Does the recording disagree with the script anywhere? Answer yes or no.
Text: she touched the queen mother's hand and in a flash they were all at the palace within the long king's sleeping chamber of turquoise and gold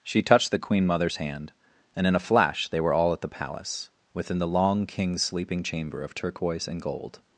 no